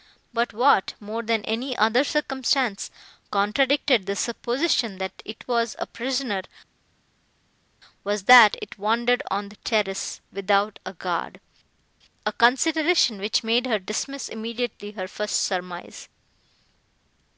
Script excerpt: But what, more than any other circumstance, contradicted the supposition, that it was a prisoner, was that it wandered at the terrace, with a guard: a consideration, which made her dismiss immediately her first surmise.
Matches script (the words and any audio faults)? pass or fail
fail